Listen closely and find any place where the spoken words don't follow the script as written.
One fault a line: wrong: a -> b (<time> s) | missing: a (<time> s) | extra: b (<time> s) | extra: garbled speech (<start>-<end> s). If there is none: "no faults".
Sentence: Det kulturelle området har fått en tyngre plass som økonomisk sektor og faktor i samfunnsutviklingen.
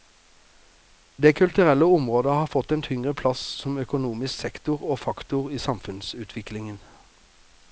no faults